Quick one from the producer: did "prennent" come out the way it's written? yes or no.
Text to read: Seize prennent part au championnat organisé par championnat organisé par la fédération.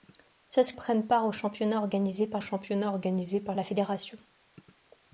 yes